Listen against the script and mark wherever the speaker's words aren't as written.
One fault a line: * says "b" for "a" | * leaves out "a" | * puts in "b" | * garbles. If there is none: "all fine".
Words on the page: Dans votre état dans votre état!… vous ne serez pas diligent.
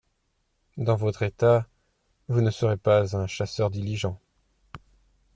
* leaves out "dans votre état"
* puts in "un chasseur"